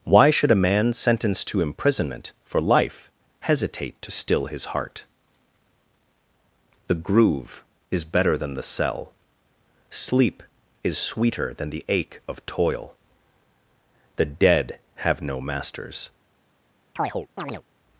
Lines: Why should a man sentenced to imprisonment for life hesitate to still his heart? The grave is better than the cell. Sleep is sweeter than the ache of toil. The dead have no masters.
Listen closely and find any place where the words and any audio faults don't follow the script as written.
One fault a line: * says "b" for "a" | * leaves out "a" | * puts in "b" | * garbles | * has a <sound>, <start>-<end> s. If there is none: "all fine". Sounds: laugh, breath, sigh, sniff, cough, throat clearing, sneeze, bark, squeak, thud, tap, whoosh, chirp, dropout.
* says "groove" for "grave"
* has a chirp, 17.0-17.6 s